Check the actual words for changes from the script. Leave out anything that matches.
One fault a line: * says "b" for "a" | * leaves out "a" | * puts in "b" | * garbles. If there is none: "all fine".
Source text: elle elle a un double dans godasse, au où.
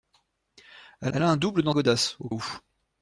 all fine